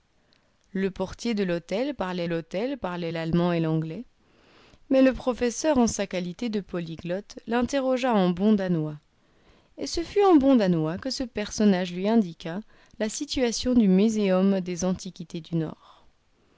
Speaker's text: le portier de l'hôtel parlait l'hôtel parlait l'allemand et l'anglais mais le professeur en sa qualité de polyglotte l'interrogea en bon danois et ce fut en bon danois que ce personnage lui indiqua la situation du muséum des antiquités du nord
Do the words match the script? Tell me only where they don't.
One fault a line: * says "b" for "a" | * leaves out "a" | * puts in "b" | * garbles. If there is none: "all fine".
all fine